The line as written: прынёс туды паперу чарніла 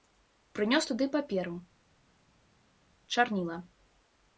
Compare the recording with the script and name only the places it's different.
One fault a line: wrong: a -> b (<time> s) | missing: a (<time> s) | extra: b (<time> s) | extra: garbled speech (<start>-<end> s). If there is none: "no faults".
no faults